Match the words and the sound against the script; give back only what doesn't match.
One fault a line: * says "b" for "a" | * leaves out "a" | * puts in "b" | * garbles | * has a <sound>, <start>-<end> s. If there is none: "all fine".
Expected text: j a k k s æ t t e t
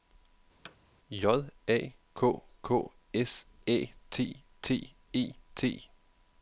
* has a thud, 0.6-0.8 s